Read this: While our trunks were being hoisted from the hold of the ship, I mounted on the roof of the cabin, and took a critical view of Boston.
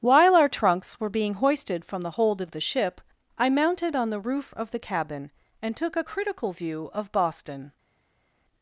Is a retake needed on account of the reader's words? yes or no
no